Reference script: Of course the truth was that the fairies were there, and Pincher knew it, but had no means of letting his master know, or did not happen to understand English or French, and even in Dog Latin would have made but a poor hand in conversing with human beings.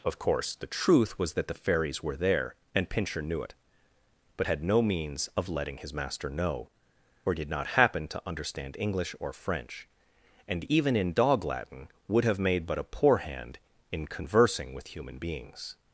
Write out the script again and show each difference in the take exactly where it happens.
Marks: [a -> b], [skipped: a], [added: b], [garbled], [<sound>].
Of course the truth was that the fairies were there, and Pincher knew it, but had no means of letting his master know, or did not happen to understand English or French, and even in Dog Latin would have made but a poor hand in conversing with human beings.